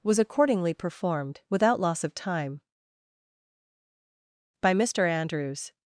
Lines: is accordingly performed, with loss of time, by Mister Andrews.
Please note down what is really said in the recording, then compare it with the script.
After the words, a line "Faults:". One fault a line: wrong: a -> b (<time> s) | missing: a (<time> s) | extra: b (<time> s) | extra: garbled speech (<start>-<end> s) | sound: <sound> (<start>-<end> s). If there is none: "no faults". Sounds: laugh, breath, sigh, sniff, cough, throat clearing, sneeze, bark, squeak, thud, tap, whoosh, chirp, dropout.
was accordingly performed, without loss of time, by Mister Andrews.
Faults:
wrong: is -> was (0.0 s)
wrong: with -> without (1.5 s)